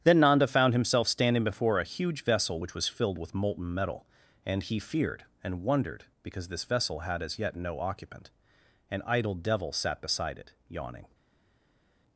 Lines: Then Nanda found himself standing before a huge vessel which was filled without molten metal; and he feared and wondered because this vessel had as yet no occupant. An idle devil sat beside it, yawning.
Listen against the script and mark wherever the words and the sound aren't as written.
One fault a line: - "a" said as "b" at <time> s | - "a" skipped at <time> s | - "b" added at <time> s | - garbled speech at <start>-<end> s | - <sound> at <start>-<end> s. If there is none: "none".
- "without" said as "with" at 3.2 s